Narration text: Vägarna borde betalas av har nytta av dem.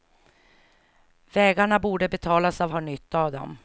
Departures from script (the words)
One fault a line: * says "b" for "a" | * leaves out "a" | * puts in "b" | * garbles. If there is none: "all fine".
all fine